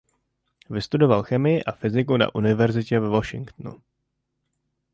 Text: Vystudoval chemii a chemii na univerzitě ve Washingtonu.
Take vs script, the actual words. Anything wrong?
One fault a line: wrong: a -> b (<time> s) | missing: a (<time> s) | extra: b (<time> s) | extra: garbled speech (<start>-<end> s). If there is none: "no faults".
wrong: chemii -> fyziku (1.7 s)